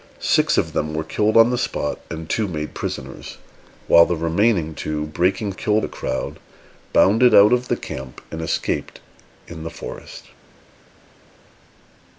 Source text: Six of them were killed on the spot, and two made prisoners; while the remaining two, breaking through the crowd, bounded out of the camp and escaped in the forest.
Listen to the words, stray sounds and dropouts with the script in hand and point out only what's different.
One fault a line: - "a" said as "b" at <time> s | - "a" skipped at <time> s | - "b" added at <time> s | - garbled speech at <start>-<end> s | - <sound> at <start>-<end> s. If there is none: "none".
- "through" said as "killed" at 5.5 s